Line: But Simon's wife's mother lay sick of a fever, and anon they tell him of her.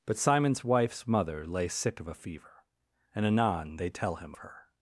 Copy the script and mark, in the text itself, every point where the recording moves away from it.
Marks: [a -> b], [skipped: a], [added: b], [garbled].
But Simon's wife's mother lay sick of a fever, and anon they tell him [skipped: of] her.